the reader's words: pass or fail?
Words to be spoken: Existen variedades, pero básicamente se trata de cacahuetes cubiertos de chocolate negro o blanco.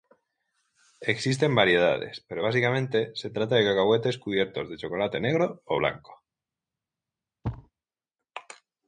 pass